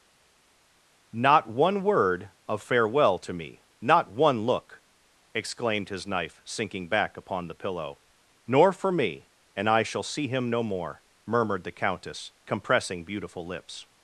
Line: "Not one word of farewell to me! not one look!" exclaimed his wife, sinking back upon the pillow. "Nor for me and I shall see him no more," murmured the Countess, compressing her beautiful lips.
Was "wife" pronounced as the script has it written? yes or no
no